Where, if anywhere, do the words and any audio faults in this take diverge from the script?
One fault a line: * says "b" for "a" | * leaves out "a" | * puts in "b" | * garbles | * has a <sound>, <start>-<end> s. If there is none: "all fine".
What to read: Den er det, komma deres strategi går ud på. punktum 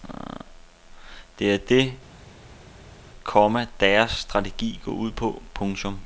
* says "Det" for "Den"